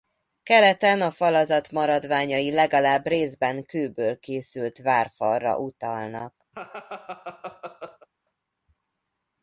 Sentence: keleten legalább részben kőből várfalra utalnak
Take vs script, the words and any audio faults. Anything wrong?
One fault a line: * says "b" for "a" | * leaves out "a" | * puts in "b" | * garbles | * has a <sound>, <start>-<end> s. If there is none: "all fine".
* puts in "a falazat maradványai"
* puts in "készült"
* has a laugh, 6.5-8.1 s